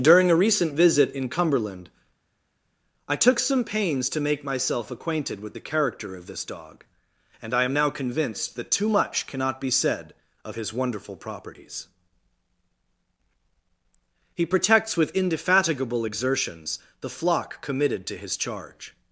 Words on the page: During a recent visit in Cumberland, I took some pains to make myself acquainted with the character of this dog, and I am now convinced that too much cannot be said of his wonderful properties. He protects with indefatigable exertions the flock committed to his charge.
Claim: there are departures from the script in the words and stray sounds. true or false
false